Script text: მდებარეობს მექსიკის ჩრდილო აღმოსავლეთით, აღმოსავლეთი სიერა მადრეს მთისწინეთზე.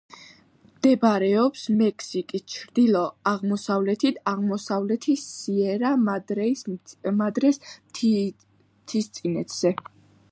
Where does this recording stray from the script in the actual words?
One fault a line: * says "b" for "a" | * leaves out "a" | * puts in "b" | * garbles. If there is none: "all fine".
all fine